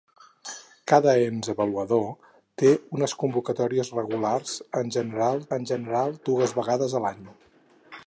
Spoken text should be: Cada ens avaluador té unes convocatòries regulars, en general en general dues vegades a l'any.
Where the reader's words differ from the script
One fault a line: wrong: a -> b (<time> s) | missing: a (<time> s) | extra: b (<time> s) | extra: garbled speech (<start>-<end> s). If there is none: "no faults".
no faults